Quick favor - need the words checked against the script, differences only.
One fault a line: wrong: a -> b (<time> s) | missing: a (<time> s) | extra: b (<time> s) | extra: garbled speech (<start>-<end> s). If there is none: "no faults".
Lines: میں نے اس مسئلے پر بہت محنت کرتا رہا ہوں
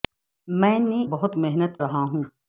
missing: اس مسئلے پر (1.0 s)
missing: کرتا (1.8 s)